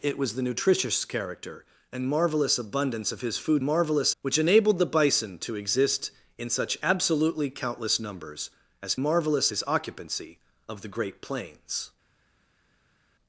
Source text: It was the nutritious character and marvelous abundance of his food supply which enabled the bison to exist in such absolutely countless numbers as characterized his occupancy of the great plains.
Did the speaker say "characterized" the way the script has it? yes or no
no